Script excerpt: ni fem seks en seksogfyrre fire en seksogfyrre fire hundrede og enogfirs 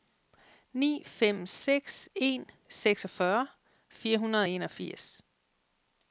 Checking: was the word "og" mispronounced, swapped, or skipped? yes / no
no